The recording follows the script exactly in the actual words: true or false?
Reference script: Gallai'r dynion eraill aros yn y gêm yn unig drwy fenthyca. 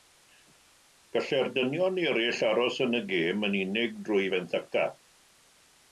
true